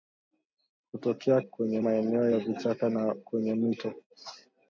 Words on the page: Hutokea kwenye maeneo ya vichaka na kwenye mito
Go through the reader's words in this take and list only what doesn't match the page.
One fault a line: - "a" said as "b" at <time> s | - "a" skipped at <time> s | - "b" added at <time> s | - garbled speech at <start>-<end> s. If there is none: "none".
none